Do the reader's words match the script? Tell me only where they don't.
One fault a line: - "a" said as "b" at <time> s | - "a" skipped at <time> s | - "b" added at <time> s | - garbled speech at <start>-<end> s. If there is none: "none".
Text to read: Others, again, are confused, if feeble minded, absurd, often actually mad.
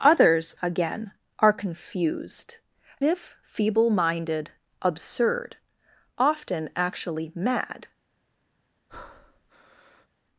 none